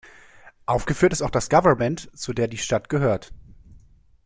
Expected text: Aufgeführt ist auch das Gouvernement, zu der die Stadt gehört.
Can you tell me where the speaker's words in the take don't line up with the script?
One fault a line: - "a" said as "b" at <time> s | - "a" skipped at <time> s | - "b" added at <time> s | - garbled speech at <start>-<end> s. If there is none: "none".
none